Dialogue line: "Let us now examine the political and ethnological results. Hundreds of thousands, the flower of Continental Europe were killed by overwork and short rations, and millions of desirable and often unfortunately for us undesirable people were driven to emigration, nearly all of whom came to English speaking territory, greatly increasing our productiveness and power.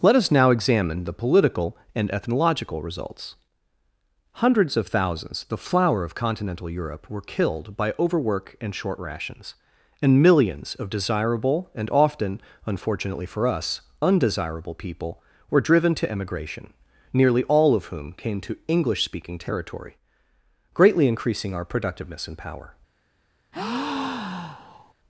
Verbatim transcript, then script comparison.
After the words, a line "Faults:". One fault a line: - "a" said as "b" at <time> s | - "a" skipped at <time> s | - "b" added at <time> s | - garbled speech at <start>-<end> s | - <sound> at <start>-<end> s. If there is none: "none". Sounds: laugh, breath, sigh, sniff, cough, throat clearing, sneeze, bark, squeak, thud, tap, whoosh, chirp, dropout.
"Let us now examine the political and ethnological results. Hundreds of thousands, the flower of Continental Europe were killed by overwork and short rations, and millions of desirable and often unfortunately for us undesirable people were driven to emigration, nearly all of whom came to English speaking territory, greatly increasing our productiveness and power.
Faults:
- breath at 23.5-24.9 s